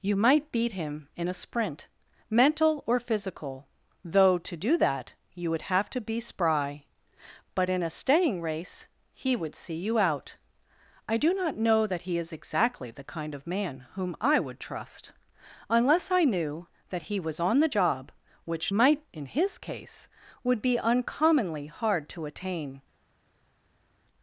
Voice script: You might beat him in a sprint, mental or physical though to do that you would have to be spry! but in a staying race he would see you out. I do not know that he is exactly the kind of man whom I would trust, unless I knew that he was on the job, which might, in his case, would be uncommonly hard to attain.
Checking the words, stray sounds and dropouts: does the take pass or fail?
pass